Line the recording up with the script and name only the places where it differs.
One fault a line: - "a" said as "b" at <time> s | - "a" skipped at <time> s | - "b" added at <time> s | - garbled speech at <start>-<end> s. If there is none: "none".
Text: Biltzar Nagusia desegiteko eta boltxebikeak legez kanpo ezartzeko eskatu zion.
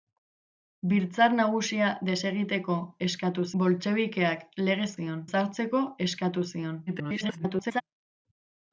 - "eta" said as "eskatu" at 3.1 s
- "kanpo" said as "zion" at 5.0 s
- garbled speech at 6.9-7.8 s